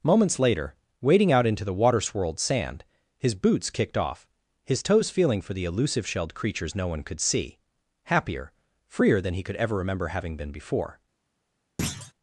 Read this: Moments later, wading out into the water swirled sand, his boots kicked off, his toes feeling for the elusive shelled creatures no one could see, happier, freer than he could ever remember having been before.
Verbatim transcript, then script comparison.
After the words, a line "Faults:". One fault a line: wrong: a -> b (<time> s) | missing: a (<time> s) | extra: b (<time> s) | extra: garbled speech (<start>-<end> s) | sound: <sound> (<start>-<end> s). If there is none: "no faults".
Moments later, wading out into the water swirled sand, his boots kicked off, his toes feeling for the elusive shelled creatures no one could see, happier, freer than he could ever remember having been before.
Faults:
sound: thud (11.8-12.1 s)